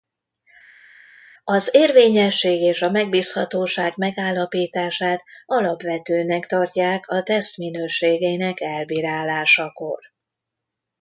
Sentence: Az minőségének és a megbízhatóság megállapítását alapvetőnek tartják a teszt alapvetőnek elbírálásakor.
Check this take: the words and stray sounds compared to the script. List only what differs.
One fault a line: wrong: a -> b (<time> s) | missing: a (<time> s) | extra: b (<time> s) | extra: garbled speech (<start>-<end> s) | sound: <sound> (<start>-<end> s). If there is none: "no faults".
wrong: minőségének -> érvényesség (1.7 s)
wrong: alapvetőnek -> minőségének (7.6 s)